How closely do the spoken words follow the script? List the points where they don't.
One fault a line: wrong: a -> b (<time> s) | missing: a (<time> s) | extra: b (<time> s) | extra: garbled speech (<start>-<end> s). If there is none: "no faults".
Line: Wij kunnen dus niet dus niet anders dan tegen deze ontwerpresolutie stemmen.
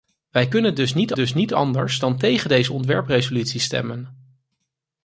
no faults